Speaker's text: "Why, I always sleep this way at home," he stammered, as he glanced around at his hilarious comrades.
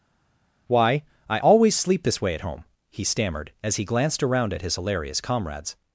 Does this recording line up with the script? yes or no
yes